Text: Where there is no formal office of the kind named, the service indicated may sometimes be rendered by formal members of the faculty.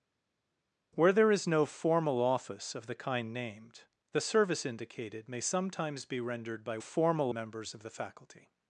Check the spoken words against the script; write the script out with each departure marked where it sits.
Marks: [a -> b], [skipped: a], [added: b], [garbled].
Where there is no formal office of the kind named, the service indicated may sometimes be rendered by formal members of the faculty.